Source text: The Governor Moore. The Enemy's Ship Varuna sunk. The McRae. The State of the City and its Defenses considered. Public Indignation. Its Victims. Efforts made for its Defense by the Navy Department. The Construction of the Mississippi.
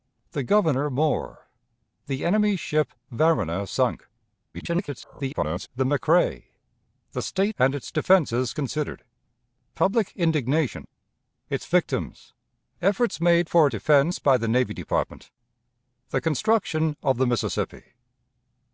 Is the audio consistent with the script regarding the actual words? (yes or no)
no